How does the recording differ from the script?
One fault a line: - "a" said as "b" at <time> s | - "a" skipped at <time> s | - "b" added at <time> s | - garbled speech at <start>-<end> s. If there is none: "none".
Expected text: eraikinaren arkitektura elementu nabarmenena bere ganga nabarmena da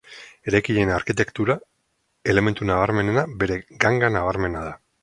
none